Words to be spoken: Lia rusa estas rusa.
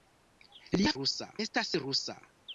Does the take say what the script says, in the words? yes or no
yes